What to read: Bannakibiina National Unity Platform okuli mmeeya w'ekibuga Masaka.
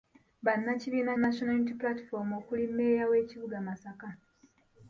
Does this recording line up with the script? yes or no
yes